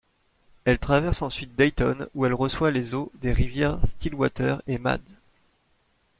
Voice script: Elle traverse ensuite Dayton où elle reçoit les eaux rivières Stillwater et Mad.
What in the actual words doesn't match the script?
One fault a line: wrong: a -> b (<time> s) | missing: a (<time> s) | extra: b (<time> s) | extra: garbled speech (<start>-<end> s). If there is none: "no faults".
extra: des (3.2 s)